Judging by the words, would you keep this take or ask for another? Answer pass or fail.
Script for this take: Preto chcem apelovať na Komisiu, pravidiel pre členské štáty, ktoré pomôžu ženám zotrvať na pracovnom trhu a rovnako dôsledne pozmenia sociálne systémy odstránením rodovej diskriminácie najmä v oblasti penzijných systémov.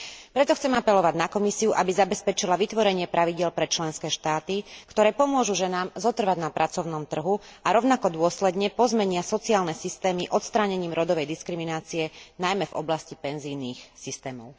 fail